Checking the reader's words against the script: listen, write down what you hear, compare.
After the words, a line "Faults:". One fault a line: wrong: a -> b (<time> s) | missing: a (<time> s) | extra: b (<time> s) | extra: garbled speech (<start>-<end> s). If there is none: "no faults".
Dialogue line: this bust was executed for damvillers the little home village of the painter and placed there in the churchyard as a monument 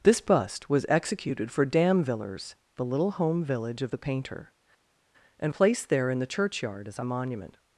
this bust was executed for damvillers the little home village of the painter and placed there in the churchyard as a monument
Faults:
no faults